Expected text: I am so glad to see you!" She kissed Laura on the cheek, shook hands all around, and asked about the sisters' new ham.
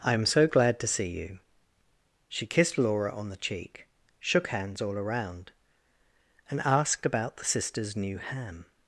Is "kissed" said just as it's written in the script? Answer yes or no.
yes